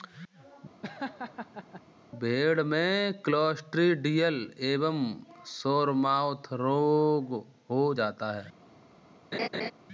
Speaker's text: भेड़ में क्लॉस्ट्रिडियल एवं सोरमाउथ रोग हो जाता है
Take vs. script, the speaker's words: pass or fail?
pass